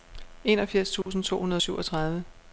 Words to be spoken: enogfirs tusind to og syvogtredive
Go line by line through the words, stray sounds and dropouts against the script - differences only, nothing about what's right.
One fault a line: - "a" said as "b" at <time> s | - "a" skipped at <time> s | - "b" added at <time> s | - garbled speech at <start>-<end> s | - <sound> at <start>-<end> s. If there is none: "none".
- dropout at 1.0-1.1 s
- "hundrede" added at 1.4 s